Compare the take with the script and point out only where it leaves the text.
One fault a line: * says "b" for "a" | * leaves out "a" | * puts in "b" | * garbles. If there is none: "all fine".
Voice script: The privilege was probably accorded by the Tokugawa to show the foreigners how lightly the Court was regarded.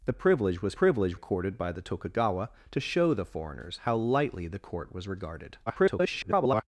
* says "privilege" for "probably"
* garbles